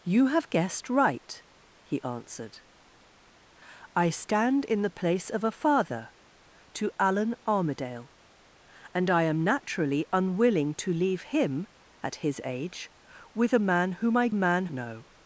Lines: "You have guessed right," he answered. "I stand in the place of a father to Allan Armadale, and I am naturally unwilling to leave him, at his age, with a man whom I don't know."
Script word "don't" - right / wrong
wrong